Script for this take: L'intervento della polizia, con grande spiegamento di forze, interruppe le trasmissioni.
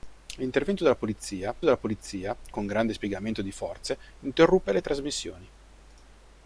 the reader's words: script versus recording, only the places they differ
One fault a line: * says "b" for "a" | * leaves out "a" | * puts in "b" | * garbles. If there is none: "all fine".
* puts in "della polizia"